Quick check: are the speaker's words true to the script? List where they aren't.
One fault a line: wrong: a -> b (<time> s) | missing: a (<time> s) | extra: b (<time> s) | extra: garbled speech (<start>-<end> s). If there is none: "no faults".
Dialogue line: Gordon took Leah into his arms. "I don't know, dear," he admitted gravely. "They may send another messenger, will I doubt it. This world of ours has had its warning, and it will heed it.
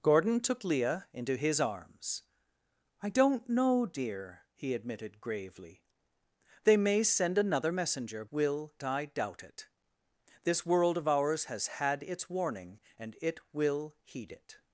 no faults